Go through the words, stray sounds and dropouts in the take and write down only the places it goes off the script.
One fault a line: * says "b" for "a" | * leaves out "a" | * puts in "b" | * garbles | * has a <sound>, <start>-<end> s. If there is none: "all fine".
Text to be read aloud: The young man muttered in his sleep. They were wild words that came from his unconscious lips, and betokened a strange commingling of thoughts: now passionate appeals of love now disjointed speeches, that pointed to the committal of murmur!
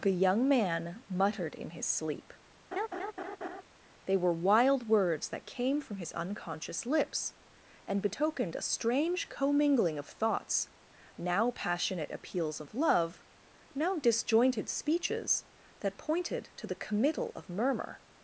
* has a laugh, 2.7-3.6 s